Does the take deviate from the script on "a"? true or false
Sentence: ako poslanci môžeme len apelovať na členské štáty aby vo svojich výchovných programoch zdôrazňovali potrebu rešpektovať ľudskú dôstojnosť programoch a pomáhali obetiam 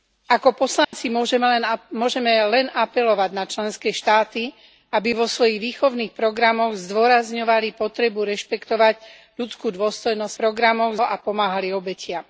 false